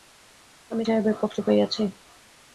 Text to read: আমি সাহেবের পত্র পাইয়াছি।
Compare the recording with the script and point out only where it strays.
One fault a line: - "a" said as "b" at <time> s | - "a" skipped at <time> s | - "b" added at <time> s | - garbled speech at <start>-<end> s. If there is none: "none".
none